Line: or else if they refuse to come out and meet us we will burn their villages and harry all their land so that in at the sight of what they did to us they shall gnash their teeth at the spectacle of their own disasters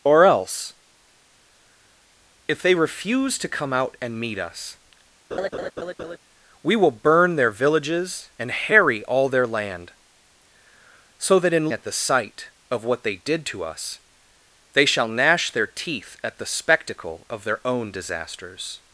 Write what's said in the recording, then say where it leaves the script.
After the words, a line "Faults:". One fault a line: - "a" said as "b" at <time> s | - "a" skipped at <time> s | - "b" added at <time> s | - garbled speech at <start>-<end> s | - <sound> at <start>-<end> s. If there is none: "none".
or else if they refuse to come out and meet us we will burn their villages and harry all their land so that in at the sight of what they did to us they shall gnash their teeth at the spectacle of their own disasters
Faults:
- laugh at 5.3-6.2 s